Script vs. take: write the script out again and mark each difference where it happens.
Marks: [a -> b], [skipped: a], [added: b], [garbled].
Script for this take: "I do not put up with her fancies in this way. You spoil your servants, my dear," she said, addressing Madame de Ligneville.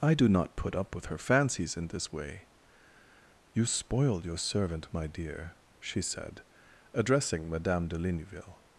"I do not put up with her fancies in this way. You spoil your [servants, -> servant] my dear," she said, addressing Madame de Ligneville.